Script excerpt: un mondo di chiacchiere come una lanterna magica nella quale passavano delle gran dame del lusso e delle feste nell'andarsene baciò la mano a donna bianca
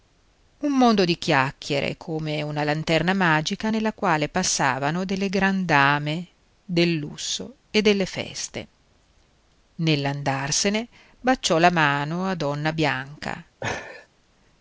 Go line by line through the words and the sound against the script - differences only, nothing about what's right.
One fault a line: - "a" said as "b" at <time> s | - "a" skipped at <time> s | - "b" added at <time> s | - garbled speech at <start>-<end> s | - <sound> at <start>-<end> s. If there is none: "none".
- laugh at 13.6-14.1 s